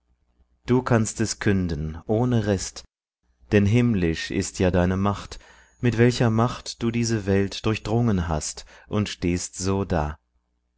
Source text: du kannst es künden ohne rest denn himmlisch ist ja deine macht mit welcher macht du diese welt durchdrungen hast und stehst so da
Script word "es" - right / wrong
right